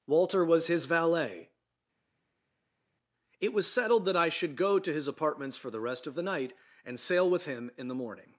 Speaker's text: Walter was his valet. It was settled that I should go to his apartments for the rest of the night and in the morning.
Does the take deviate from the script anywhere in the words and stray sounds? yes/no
yes